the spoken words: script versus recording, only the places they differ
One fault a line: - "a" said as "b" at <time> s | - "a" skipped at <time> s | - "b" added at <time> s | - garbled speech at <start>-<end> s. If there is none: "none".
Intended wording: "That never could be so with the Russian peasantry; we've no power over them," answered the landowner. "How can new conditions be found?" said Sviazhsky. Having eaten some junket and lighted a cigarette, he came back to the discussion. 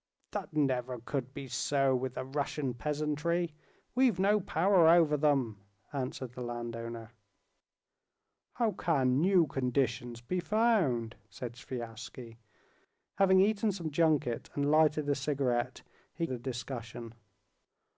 - "came back to" skipped at 16.2 s